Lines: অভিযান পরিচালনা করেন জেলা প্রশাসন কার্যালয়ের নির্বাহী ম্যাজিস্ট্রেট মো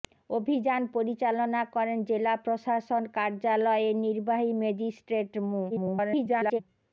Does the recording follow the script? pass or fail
fail